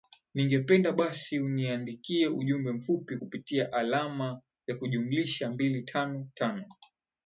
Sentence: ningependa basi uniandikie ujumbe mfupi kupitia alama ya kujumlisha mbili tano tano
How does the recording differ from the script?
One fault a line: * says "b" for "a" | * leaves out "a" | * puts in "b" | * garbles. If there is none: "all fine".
all fine